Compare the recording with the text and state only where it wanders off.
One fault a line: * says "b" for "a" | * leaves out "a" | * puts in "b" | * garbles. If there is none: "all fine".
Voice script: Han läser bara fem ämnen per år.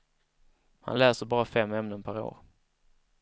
all fine